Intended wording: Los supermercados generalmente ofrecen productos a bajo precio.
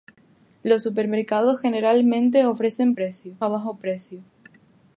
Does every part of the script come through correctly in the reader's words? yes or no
no